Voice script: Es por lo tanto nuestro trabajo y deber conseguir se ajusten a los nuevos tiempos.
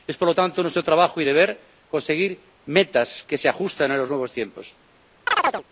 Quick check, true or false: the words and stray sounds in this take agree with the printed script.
false